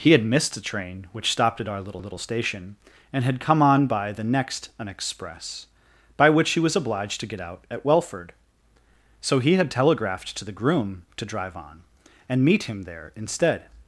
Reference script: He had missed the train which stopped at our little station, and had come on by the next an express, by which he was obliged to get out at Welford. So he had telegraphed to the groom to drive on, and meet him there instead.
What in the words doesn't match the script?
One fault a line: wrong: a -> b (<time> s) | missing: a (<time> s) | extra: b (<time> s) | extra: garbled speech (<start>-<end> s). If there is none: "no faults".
extra: little (2.0 s)